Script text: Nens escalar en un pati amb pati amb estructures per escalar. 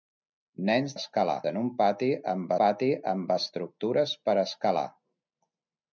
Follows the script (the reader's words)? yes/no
yes